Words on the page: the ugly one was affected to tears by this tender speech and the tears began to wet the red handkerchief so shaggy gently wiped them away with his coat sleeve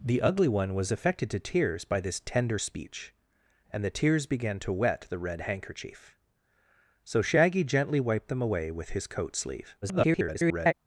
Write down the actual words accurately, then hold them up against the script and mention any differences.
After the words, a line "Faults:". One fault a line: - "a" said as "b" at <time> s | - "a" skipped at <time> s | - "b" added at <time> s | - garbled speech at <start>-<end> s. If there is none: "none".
the ugly one was affected to tears by this tender speech and the tears began to wet the red handkerchief so shaggy gently wiped them away with his coat sleeve [garbled]
Faults:
- garbled speech at 9.8-10.7 s